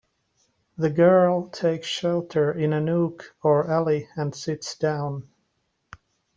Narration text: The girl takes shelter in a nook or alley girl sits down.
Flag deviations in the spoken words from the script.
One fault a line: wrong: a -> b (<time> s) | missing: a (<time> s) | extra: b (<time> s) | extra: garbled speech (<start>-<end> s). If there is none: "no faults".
wrong: girl -> and (4.2 s)